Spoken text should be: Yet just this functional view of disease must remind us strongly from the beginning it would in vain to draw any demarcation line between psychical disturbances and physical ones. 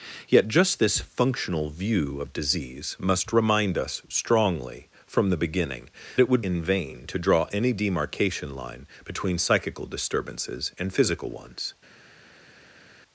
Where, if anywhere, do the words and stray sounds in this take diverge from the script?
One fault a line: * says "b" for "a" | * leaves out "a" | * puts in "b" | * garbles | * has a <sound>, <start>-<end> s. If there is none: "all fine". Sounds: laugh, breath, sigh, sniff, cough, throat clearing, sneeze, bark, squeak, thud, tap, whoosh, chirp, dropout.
all fine